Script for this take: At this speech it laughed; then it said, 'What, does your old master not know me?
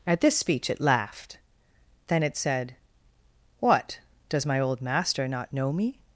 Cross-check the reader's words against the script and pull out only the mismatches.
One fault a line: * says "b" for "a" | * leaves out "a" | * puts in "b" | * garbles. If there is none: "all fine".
* says "my" for "your"